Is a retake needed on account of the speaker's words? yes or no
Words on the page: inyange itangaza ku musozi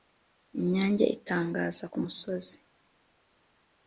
no